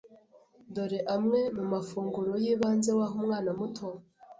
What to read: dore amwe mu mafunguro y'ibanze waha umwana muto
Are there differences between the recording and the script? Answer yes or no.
no